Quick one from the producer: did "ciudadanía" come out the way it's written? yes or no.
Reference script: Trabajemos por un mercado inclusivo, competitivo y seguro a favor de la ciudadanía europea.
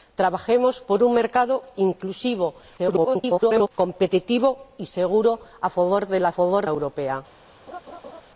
no